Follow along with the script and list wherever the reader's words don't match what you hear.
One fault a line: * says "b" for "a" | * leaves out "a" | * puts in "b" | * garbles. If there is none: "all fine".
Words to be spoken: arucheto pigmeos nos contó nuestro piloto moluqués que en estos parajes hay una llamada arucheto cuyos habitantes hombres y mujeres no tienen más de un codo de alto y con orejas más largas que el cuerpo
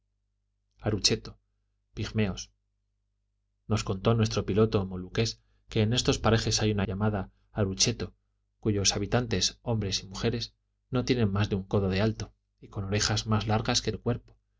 all fine